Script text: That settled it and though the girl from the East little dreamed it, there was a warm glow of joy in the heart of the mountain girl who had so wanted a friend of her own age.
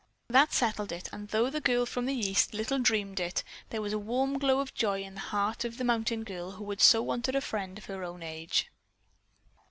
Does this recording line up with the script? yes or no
yes